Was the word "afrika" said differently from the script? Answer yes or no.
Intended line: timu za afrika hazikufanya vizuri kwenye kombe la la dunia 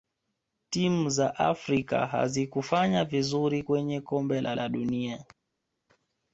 no